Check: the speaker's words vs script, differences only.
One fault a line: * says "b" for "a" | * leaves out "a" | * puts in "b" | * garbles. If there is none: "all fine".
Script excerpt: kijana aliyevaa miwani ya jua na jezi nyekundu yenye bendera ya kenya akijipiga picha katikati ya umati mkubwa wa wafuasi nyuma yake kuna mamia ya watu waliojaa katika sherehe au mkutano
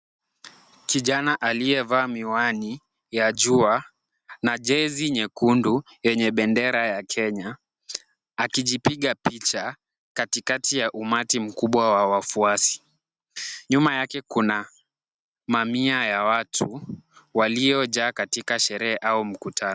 all fine